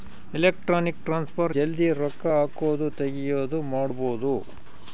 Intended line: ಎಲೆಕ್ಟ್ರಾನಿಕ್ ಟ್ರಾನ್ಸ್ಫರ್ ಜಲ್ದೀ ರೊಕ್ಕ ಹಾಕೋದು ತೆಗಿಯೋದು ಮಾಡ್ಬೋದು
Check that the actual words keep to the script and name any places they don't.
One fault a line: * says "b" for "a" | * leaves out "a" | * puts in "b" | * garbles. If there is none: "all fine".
all fine